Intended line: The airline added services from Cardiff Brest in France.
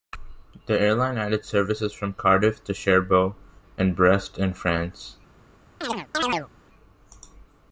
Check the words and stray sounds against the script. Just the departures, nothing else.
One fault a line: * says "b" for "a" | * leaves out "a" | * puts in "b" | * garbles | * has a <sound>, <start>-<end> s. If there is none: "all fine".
* puts in "to Cherbourg and"
* has a chirp, 5.8-6.5 s